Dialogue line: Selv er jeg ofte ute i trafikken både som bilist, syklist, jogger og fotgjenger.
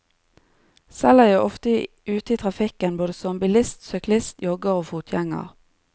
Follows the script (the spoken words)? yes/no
yes